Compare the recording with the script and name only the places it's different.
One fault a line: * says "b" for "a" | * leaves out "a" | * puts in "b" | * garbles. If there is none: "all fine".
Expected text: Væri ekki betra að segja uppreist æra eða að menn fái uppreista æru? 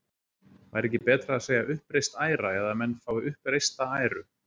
all fine